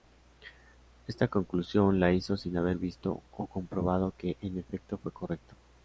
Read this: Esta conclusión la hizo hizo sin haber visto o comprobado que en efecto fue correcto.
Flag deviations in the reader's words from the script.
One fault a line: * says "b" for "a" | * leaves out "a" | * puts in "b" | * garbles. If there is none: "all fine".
* leaves out "hizo"